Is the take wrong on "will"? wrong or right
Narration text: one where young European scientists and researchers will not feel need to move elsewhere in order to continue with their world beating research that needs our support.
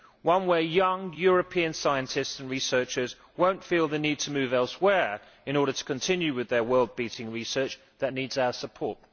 right